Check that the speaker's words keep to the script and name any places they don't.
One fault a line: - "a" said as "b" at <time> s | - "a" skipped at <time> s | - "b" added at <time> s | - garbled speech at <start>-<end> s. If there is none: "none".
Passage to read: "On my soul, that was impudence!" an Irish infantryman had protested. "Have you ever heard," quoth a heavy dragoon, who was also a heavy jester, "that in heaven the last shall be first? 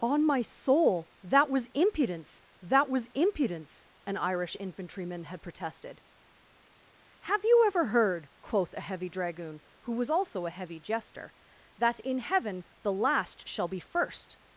- "that was impudence" added at 2.6 s